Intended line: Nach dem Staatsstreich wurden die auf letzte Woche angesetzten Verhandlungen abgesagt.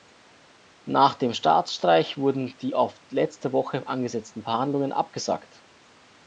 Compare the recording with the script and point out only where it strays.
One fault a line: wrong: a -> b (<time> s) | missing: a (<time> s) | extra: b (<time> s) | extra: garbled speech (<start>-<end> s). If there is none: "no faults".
no faults